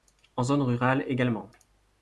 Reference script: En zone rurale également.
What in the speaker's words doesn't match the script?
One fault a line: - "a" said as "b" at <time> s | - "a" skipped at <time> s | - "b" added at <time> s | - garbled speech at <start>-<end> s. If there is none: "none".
none